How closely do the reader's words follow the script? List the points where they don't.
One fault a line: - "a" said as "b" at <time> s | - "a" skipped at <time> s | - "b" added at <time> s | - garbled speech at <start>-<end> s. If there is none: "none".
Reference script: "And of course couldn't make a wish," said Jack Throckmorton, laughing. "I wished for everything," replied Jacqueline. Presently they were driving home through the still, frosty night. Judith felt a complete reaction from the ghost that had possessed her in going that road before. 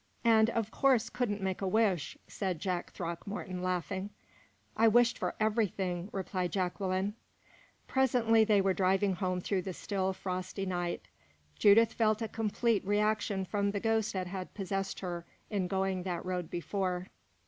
none